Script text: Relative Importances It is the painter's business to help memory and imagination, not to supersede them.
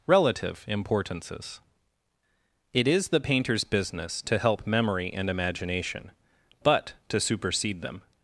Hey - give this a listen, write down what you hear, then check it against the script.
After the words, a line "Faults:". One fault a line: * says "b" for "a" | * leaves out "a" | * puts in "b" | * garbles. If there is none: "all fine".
Relative Importances It is the painter's business to help memory and imagination, but to supersede them.
Faults:
* says "but" for "not"